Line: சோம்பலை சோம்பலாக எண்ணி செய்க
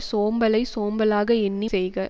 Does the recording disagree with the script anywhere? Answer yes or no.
no